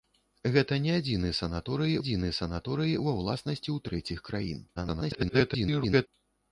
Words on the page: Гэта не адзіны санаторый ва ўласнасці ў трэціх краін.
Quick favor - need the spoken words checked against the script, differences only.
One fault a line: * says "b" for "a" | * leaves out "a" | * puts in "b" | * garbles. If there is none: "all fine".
* puts in "адзіны санаторый"
* garbles